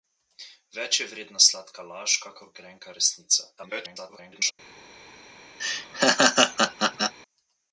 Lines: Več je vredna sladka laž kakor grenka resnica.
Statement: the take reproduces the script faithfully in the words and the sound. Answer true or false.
false